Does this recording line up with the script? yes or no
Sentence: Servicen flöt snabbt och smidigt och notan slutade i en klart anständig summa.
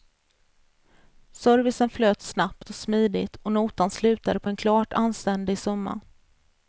no